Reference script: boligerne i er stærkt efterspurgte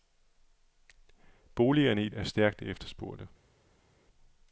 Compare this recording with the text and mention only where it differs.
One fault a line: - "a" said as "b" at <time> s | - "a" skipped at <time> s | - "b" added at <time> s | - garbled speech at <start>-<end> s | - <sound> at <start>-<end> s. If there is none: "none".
none